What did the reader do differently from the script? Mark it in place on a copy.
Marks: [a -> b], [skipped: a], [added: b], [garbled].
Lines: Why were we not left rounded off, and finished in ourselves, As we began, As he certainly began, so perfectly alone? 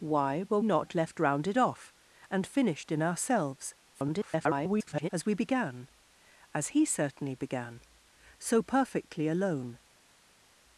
Why were [skipped: we] not left rounded off, and finished in ourselves, [garbled] As we began, As he certainly began, so perfectly alone?